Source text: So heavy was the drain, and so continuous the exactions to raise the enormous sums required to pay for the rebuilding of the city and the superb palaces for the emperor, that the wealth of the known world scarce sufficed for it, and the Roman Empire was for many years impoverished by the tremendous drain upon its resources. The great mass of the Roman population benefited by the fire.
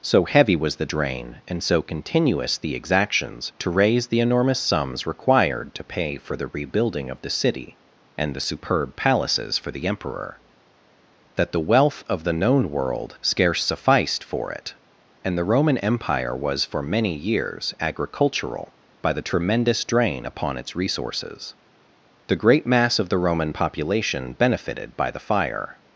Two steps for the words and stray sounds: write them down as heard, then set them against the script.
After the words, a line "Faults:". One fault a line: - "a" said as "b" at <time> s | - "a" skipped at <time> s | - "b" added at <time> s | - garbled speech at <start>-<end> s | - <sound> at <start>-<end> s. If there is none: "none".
So heavy was the drain, and so continuous the exactions to raise the enormous sums required to pay for the rebuilding of the city and the superb palaces for the emperor, that the wealth of the known world scarce sufficed for it, and the Roman Empire was for many years agricultural by the tremendous drain upon its resources. The great mass of the Roman population benefited by the fire.
Faults:
- "impoverished" said as "agricultural" at 17.8 s